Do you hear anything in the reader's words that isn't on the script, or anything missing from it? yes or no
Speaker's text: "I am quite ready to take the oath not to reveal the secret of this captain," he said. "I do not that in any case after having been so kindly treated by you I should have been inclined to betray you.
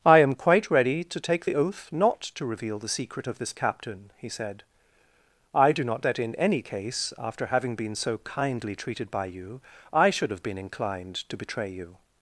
no